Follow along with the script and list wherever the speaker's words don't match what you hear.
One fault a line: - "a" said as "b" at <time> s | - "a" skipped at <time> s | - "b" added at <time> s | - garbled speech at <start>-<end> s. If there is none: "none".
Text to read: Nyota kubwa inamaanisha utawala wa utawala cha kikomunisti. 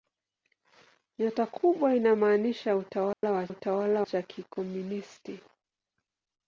none